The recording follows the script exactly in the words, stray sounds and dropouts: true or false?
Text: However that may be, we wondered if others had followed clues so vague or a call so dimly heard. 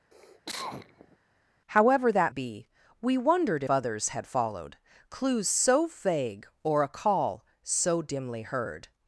false